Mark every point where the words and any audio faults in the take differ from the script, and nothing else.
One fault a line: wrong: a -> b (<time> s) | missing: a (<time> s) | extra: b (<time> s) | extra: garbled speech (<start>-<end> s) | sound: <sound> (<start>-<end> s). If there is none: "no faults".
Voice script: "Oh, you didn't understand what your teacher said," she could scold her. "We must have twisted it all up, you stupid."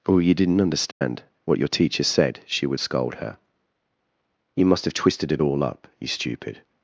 sound: dropout (0.9-1.0 s)
wrong: could -> would (2.7 s)
wrong: We -> You (4.5 s)